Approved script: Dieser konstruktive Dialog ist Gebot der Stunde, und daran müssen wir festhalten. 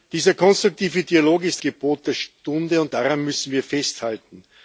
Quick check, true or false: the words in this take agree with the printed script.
true